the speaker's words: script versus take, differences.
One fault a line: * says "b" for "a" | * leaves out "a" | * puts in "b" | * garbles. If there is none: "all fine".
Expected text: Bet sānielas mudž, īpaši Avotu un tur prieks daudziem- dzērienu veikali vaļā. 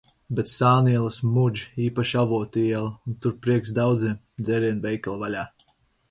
* puts in "iela"